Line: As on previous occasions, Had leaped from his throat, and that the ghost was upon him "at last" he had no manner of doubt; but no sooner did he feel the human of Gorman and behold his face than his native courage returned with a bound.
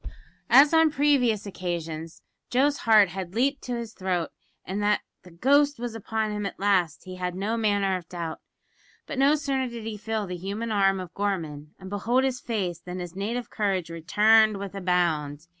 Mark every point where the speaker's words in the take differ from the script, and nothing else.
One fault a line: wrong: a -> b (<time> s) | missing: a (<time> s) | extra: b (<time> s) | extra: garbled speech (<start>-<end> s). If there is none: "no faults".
extra: Joe's heart (2.5 s)
wrong: from -> to (3.6 s)
extra: arm (10.7 s)